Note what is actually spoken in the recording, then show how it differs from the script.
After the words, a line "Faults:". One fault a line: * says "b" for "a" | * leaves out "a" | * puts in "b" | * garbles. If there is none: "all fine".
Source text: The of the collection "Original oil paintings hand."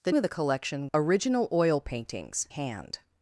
The of the collection "Original oil paintings hand."
Faults:
all fine